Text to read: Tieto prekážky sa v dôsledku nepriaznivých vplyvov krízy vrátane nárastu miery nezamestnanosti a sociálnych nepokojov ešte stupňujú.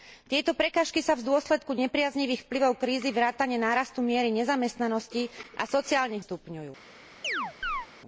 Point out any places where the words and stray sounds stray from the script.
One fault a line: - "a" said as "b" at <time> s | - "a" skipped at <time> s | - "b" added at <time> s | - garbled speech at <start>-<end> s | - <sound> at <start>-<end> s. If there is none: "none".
- "nepokojov ešte" skipped at 6.2 s
- chirp at 7.2-7.9 s